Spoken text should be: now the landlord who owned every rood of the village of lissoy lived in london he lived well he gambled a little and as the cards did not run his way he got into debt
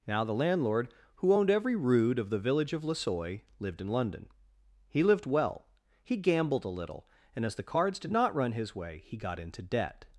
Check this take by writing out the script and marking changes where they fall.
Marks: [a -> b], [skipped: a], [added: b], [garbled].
now the landlord who owned every rood of the village of lissoy lived in london he lived well he gambled a little and as the cards did not run his way he got into debt